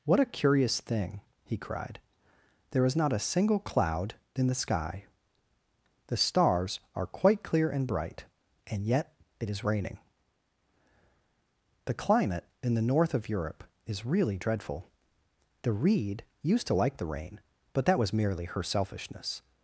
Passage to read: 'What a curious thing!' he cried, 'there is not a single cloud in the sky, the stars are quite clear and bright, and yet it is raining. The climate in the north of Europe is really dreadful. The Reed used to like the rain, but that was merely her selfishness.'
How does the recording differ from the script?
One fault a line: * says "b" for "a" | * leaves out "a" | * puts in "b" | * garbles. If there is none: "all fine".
all fine